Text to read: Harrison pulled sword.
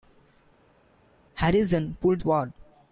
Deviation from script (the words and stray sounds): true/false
false